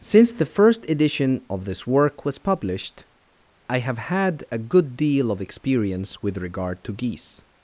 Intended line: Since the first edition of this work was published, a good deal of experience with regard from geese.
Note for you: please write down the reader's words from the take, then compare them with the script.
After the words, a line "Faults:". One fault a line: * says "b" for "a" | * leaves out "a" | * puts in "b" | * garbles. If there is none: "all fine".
Since the first edition of this work was published, I have had a good deal of experience with regard to geese.
Faults:
* puts in "I have had"
* says "to" for "from"